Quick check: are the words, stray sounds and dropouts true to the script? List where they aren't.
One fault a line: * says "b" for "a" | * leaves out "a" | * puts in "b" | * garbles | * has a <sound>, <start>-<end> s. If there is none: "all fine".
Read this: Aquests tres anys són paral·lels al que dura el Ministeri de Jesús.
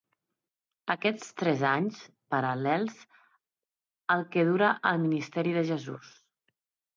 * leaves out "són"